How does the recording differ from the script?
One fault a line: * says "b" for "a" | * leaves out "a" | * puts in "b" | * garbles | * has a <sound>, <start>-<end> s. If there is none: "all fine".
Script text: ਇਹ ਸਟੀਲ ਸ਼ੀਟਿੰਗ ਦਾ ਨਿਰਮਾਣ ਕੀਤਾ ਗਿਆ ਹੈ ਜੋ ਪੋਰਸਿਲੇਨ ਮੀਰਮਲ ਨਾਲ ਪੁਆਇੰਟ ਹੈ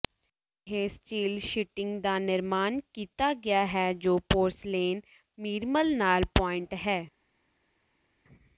all fine